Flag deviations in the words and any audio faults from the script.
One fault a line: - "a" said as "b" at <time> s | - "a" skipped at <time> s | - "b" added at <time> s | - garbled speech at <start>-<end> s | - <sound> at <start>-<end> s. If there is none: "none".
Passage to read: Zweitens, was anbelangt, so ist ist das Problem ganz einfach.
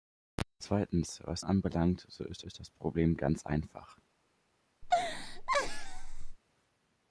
- laugh at 4.8-6.4 s